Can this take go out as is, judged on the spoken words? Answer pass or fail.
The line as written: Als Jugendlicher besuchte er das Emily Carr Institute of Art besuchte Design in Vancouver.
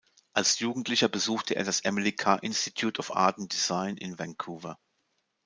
fail